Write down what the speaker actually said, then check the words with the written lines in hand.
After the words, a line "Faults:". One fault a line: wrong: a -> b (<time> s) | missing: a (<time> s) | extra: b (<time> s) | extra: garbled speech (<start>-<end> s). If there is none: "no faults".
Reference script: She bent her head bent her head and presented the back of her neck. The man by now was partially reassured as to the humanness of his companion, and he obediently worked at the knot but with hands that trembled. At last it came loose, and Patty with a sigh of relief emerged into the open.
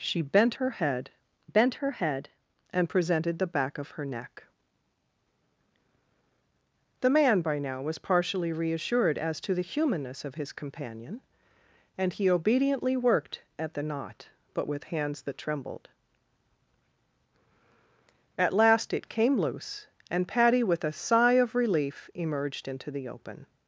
She bent her head bent her head and presented the back of her neck. The man by now was partially reassured as to the humanness of his companion, and he obediently worked at the knot but with hands that trembled. At last it came loose, and Patty with a sigh of relief emerged into the open.
Faults:
no faults